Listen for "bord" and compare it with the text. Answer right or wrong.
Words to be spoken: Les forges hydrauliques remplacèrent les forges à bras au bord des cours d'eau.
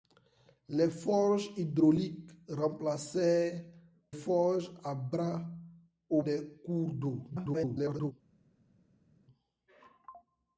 wrong